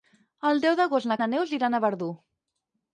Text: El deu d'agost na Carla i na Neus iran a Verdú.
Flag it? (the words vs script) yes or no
yes